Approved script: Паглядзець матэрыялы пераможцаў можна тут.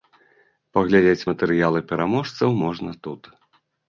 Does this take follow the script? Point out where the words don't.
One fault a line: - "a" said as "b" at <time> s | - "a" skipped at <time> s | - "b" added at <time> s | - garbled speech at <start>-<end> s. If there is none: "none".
none